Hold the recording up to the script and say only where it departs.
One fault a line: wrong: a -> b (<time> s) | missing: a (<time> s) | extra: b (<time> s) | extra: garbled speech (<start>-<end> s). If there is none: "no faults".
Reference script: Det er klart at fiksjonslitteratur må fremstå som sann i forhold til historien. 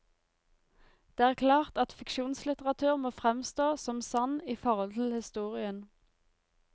no faults